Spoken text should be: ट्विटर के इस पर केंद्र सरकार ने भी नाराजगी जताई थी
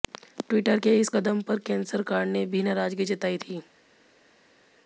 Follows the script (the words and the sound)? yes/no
no